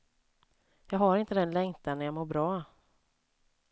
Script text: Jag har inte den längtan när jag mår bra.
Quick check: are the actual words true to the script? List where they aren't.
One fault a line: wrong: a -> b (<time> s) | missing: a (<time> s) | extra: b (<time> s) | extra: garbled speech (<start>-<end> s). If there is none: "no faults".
no faults